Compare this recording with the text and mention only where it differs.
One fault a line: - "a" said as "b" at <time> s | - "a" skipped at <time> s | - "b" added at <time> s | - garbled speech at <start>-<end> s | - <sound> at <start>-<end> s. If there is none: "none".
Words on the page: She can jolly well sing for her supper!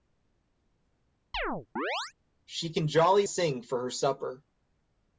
- chirp at 1.3-2.1 s
- "well" skipped at 3.3 s